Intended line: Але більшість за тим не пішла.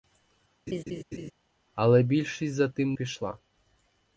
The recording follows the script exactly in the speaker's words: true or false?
false